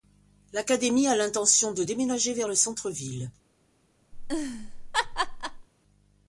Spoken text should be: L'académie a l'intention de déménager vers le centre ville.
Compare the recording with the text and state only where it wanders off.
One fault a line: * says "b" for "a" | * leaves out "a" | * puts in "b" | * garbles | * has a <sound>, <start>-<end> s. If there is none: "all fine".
* has a laugh, 4.1-5.7 s